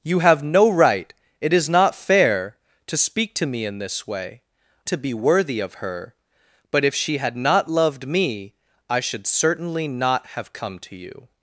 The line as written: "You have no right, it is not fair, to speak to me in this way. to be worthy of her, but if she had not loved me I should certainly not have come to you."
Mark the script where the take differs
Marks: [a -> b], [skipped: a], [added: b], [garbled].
"You have no right, it is not fair, to speak to me in this way. to be worthy of her, but if she had not loved me I should certainly not have come to you."